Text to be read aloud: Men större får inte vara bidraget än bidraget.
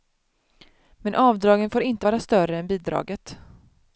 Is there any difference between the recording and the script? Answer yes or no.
yes